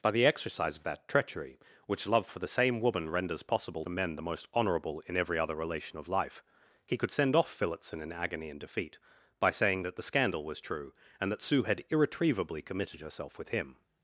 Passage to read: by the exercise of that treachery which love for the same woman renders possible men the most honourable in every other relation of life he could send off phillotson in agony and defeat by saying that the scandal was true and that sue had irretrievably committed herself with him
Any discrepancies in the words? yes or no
no